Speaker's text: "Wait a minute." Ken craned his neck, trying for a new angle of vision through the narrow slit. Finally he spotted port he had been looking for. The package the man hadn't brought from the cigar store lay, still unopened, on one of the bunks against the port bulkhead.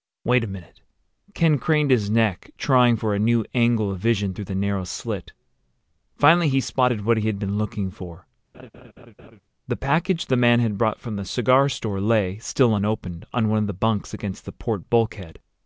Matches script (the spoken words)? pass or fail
fail